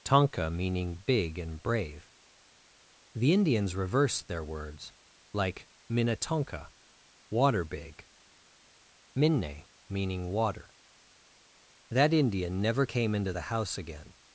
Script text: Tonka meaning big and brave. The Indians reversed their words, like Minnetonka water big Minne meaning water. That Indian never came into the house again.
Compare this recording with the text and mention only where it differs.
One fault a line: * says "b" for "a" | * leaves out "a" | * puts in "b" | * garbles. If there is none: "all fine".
all fine